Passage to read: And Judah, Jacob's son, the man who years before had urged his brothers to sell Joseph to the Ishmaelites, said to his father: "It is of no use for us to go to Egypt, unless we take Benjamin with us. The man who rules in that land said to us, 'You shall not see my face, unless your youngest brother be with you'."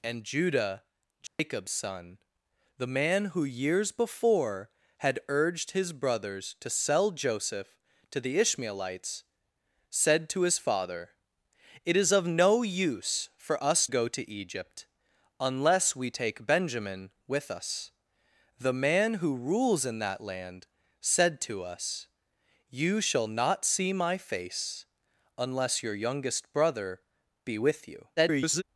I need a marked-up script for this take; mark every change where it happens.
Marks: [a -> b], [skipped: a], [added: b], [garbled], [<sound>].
And Judah, Jacob's [dropout] son, the man who years before had urged his brothers to sell Joseph to the Ishmaelites, said to his father: "It is of no use for us [skipped: to] go to Egypt, unless we take Benjamin with us. The man who rules in that land said to us, 'You shall not see my face, unless your youngest brother be with you'." [garbled]